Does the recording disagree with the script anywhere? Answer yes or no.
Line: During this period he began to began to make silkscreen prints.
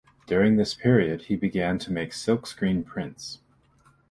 yes